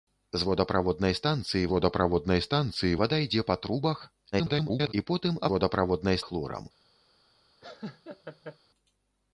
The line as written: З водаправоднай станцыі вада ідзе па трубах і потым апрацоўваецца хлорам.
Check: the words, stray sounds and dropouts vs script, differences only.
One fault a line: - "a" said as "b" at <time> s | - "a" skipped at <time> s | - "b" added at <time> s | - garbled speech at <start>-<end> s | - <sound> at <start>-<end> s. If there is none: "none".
- "водаправоднай станцыі" added at 1.7 s
- garbled speech at 4.3-4.9 s
- "апрацоўваецца" said as "водаправоднай" at 5.5 s
- laugh at 7.6-8.6 s